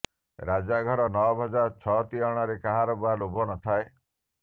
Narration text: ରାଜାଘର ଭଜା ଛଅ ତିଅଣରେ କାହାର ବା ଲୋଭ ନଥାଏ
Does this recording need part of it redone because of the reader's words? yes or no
yes